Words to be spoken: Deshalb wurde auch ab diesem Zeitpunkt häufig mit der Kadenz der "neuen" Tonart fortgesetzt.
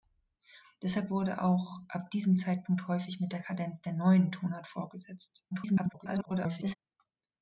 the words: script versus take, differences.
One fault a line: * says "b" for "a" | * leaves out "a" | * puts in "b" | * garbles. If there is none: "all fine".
* garbles